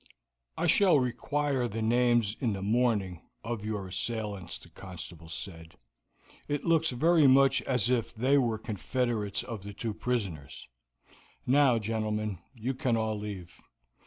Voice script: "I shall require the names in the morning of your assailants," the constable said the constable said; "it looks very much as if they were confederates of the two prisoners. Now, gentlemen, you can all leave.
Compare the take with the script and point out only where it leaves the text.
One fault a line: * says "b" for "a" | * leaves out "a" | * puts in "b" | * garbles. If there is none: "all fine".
* leaves out "the constable said"